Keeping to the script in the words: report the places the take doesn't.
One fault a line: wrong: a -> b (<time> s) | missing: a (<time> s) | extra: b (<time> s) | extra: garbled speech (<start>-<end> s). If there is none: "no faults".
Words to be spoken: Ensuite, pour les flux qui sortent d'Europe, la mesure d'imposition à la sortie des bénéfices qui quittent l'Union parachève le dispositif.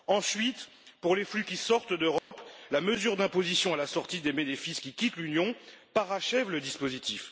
no faults